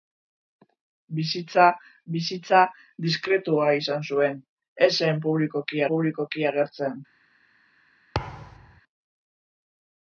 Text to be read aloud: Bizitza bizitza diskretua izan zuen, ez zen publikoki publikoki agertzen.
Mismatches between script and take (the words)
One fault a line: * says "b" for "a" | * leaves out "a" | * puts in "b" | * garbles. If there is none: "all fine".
all fine